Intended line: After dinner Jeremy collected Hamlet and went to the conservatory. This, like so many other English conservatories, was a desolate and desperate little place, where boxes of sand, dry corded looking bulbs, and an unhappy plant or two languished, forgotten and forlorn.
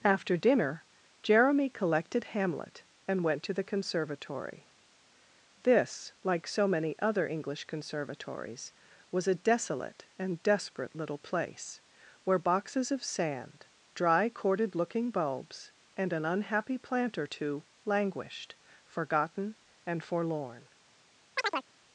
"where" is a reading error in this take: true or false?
false